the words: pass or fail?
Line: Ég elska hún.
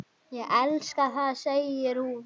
fail